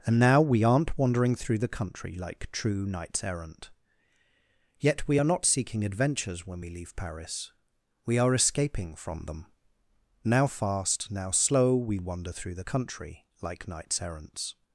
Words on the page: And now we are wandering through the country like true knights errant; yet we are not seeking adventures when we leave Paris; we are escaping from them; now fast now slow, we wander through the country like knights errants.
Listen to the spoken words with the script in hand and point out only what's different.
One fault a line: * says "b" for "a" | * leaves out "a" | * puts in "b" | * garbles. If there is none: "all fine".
* says "aren't" for "are"